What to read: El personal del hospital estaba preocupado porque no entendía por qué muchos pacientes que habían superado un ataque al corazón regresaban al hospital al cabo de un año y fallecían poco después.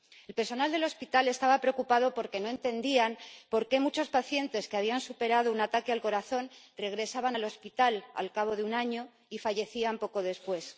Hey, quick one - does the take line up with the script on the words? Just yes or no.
yes